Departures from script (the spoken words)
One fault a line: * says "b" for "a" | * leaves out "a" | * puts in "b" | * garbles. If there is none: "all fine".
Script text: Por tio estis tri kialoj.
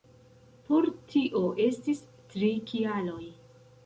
all fine